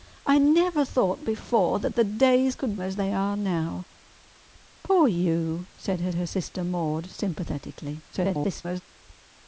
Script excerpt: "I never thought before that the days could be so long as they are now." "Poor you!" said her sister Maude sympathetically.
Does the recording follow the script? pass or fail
fail